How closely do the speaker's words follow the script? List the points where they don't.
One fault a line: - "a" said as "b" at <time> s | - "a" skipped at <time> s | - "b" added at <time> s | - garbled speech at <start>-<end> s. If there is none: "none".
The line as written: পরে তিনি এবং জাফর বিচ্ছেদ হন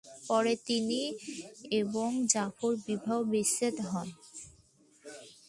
- "বিবাহ" added at 2.9 s